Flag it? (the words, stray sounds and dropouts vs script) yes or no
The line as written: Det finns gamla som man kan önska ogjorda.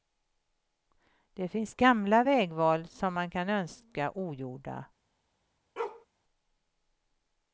yes